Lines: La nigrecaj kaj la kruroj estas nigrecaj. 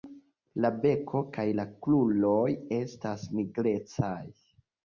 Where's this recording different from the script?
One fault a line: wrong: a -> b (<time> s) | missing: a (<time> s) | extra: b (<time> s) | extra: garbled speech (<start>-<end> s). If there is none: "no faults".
wrong: nigrecaj -> beko (0.8 s)